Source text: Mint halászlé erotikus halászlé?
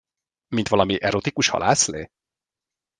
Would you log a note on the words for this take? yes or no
yes